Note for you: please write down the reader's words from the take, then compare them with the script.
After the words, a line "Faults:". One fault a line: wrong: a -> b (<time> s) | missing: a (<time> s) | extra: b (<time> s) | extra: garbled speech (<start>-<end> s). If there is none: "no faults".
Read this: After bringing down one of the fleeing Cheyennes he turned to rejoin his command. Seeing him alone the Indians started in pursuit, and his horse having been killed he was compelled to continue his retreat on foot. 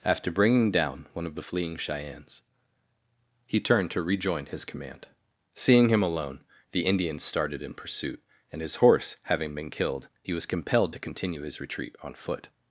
After bringing down one of the fleeing Cheyennes he turned to rejoin his command. Seeing him alone the Indians started in pursuit, and his horse having been killed he was compelled to continue his retreat on foot.
Faults:
no faults